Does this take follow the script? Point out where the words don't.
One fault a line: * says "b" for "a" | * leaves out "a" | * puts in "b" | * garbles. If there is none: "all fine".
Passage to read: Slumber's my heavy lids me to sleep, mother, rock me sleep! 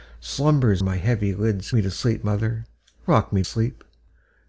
all fine